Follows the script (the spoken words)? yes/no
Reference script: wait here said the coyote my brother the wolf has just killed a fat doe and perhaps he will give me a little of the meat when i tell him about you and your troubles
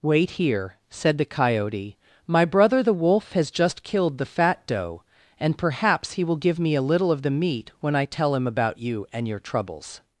no